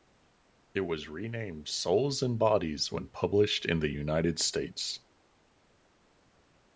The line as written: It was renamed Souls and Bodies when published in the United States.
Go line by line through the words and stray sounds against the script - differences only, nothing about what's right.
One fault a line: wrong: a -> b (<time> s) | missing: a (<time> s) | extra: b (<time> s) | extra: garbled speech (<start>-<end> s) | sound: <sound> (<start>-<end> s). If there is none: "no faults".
no faults